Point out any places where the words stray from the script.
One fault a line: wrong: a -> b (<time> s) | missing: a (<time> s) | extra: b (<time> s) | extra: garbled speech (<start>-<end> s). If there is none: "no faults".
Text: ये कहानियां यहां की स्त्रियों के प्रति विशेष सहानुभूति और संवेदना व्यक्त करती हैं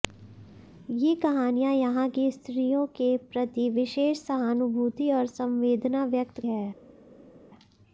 missing: करती (6.4 s)